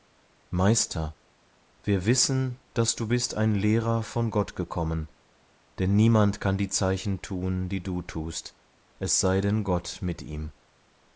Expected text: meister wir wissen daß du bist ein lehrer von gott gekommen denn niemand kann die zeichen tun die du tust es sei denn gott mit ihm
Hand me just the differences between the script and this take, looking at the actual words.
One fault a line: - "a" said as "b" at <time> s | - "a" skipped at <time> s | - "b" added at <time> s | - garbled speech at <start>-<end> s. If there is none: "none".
none